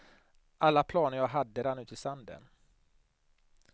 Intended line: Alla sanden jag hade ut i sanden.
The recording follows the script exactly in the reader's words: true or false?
false